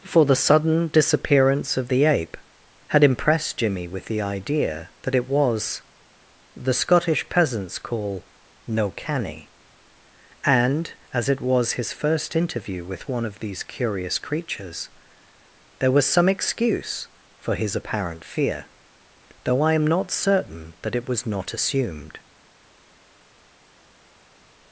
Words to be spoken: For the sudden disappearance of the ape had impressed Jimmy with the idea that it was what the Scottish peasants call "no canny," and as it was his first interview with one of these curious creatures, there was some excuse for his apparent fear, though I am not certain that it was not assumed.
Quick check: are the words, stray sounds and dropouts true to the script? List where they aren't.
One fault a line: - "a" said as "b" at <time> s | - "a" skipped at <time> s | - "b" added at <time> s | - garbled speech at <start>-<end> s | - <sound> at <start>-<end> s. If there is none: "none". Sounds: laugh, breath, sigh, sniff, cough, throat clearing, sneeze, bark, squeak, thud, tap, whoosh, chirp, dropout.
- "what" skipped at 5.8 s